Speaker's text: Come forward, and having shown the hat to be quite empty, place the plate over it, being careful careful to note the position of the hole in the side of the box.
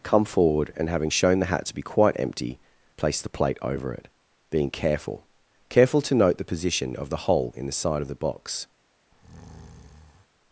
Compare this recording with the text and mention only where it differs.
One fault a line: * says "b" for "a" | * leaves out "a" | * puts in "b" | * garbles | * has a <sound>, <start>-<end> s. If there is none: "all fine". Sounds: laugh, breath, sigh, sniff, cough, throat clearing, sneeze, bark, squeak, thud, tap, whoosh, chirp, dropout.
* has a breath, 9.1-10.3 s